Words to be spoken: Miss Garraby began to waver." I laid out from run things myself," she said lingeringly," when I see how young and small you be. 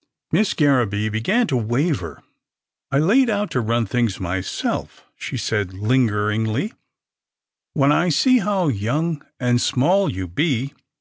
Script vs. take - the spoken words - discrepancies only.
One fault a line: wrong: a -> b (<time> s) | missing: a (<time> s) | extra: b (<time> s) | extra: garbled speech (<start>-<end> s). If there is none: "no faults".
wrong: from -> to (3.5 s)